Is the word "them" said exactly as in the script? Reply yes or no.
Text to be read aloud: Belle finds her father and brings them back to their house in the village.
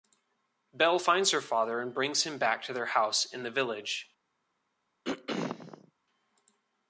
no